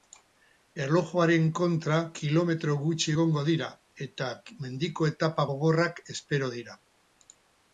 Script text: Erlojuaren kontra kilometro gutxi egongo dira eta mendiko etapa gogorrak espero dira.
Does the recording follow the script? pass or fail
pass